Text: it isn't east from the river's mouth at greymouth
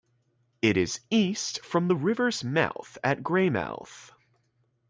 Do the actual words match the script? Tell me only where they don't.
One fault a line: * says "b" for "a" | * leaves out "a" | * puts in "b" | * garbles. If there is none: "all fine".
* says "is" for "isn't"